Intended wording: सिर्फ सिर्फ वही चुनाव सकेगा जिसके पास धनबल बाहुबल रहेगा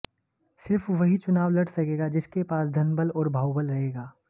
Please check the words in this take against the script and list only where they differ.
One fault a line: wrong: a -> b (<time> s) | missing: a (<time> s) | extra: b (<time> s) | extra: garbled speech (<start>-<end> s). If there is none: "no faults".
missing: सिर्फ (0.9 s)
extra: लड़ (1.5 s)
extra: और (3.1 s)